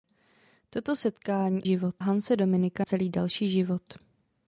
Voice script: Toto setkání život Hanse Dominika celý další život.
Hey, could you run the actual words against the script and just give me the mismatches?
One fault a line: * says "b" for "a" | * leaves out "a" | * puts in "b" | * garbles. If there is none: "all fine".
all fine